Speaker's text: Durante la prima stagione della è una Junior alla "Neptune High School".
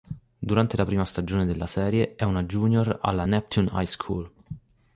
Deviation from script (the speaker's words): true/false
true